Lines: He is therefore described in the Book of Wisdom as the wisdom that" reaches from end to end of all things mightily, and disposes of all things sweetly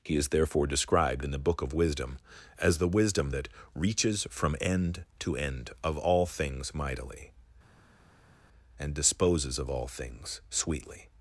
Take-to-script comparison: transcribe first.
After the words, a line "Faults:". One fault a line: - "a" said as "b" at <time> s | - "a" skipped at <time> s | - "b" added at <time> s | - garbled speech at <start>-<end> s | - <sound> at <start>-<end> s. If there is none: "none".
He is therefore described in the Book of Wisdom as the wisdom that" reaches from end to end of all things mightily, and disposes of all things sweetly
Faults:
none